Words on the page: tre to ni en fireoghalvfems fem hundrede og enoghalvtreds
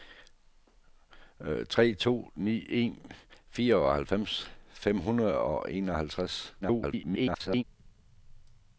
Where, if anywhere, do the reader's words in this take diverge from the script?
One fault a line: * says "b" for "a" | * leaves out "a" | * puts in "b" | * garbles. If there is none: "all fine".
* garbles